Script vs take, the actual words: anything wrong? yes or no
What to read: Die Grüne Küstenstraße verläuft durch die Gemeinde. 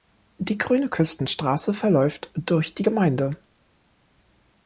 no